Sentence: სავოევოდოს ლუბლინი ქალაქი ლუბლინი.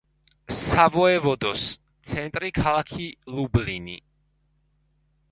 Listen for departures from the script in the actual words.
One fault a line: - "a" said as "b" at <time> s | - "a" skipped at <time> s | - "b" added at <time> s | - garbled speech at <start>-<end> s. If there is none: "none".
- "ლუბლინი" said as "ცენტრი" at 2.1 s